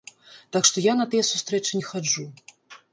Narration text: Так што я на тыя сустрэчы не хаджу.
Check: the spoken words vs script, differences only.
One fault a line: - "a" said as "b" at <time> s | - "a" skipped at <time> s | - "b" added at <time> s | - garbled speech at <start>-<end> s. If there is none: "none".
none